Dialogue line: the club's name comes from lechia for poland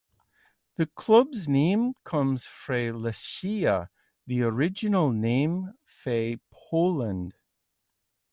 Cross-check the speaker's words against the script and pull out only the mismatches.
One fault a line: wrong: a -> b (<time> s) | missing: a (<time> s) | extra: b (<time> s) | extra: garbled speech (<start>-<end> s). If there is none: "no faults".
extra: the original name (4.2 s)